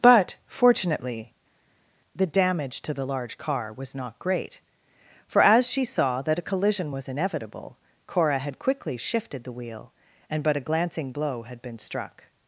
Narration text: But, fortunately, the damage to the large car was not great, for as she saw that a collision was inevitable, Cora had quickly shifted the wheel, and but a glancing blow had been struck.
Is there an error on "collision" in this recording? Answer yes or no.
no